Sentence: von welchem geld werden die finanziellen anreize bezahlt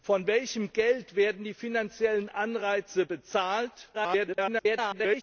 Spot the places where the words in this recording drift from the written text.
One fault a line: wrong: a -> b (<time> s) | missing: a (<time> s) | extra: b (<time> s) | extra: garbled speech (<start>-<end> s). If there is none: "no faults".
extra: garbled speech (3.9-5.2 s)